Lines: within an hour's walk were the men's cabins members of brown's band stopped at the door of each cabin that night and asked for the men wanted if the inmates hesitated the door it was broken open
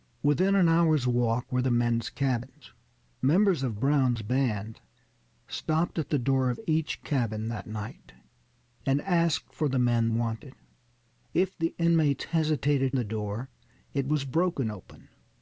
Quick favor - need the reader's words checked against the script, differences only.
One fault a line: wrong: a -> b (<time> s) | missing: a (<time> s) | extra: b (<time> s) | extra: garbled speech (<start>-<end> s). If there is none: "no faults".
no faults